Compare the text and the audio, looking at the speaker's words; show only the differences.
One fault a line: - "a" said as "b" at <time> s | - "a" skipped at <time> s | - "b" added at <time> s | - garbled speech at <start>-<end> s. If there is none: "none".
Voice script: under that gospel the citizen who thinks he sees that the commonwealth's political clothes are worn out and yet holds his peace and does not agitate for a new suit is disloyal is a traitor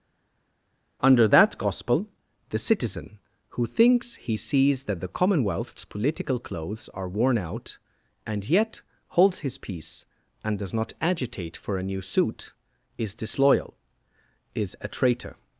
none